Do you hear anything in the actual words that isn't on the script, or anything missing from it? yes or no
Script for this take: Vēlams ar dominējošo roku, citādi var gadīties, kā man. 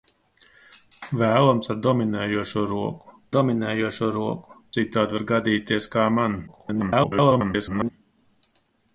yes